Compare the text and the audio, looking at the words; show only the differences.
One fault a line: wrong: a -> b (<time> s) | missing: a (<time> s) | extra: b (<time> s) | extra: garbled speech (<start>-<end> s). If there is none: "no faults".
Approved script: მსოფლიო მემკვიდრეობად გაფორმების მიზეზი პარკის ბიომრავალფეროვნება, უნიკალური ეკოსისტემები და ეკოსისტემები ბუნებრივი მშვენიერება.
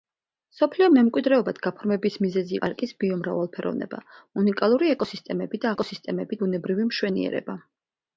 no faults